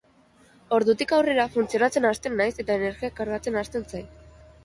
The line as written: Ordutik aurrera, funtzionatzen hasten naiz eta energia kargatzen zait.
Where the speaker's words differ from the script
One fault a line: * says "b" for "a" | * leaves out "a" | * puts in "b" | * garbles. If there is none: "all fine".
* puts in "hasten"